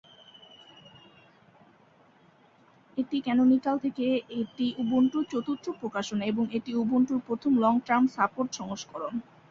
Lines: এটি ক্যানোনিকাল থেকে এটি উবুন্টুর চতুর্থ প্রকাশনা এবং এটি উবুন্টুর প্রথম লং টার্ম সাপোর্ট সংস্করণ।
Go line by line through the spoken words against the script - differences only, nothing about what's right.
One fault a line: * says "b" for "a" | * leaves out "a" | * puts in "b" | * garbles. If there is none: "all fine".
all fine